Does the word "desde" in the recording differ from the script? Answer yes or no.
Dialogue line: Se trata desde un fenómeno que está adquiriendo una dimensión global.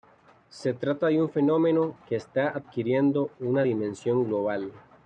yes